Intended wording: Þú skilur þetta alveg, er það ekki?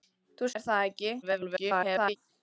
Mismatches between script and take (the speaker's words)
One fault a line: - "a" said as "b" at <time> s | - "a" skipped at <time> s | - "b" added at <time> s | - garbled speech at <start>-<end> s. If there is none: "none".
- "skilur þetta alveg" skipped at 0.5 s
- garbled speech at 1.2-2.2 s